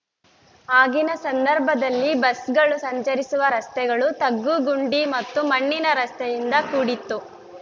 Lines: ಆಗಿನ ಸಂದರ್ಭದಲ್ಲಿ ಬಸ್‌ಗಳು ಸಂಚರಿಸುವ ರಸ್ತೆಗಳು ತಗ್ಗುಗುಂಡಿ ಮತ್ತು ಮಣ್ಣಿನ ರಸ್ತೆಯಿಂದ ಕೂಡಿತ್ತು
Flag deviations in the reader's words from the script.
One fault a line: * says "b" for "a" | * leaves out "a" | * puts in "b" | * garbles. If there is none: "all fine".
all fine